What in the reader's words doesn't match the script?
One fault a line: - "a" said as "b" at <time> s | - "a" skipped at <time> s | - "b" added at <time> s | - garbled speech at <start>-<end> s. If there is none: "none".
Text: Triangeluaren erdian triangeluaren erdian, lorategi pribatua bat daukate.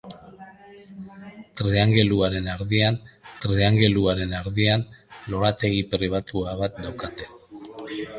none